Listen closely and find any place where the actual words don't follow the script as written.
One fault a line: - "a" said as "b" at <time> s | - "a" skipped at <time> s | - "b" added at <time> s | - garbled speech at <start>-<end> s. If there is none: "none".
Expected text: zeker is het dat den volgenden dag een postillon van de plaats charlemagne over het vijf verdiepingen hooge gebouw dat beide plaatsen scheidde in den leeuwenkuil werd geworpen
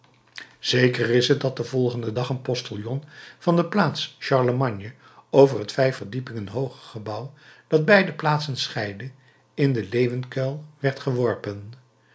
none